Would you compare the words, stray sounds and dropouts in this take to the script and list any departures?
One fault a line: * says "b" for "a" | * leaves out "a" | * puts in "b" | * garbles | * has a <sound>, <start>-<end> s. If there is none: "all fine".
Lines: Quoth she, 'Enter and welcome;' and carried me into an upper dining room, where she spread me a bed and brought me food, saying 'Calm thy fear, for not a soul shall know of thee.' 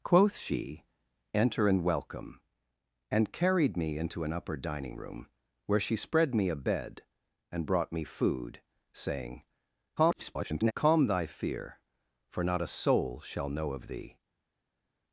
* garbles